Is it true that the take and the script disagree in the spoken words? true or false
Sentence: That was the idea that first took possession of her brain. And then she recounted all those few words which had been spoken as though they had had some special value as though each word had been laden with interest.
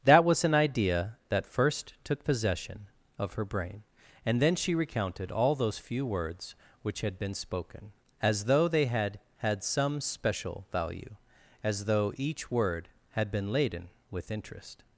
true